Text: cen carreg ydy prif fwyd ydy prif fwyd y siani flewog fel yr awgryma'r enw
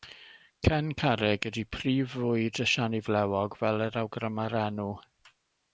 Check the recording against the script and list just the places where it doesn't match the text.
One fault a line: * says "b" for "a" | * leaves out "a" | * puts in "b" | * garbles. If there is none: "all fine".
* leaves out "ydy prif fwyd"